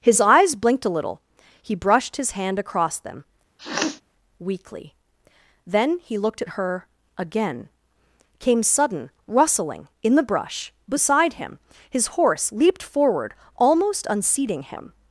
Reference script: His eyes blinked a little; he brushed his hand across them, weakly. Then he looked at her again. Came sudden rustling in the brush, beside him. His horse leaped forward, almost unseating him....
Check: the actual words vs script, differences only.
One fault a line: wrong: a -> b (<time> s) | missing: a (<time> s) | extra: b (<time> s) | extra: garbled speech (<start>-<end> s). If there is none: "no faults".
no faults